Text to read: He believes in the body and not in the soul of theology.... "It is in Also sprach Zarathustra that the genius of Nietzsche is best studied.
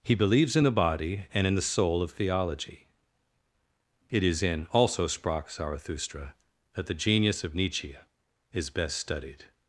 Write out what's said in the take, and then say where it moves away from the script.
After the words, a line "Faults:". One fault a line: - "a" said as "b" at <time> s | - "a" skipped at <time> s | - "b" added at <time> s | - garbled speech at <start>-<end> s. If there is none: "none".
He believes in the body and in the soul of theology.... "It is in Also sprach Zarathustra that the genius of Nietzsche is best studied.
Faults:
- "not" skipped at 1.5 s